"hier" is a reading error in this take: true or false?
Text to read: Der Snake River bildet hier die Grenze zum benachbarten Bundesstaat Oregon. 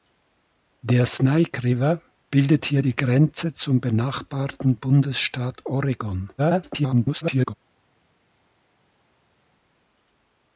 false